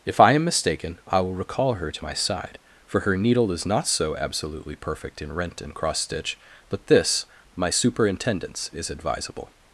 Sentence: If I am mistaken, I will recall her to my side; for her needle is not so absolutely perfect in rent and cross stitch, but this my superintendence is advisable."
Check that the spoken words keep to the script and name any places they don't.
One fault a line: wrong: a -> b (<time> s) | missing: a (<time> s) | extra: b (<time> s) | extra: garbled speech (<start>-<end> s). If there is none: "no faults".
no faults